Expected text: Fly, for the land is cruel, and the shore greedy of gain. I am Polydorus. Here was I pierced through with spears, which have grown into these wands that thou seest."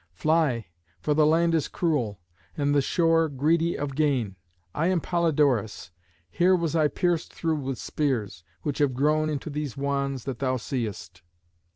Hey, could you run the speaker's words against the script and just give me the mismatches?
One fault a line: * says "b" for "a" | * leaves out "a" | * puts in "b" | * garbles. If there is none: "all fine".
all fine